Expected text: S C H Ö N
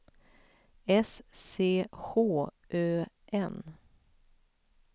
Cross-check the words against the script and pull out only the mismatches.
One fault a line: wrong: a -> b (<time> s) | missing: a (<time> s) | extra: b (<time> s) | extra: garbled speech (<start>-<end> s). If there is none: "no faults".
no faults